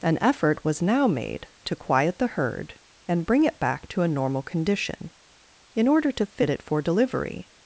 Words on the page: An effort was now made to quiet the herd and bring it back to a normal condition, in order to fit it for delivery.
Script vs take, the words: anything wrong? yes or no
no